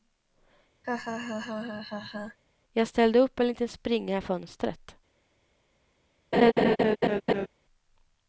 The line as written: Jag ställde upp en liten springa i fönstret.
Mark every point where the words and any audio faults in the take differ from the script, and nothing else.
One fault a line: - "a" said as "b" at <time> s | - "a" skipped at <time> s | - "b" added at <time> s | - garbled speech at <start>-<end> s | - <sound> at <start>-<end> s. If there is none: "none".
- laugh at 0.8-2.4 s
- laugh at 6.3-7.5 s